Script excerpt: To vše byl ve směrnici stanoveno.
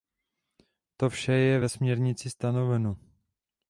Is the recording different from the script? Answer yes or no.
yes